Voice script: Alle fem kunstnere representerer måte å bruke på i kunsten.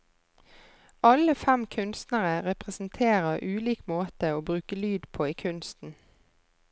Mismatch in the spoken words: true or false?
true